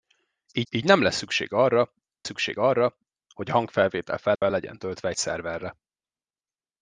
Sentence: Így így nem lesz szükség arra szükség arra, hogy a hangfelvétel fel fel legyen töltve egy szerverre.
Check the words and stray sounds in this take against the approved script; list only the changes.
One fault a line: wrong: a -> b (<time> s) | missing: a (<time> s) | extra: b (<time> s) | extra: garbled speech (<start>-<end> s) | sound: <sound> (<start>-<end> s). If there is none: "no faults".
sound: dropout (4.4-4.4 s)